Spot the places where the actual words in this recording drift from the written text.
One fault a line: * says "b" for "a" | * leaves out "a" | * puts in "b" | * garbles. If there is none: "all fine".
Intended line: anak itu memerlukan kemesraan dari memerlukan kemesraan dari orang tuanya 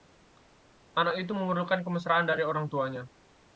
* leaves out "memerlukan kemesraan dari"